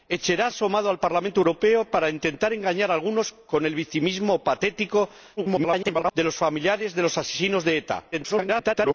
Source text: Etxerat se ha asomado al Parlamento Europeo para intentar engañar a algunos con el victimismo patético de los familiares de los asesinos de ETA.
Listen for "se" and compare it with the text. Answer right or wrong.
wrong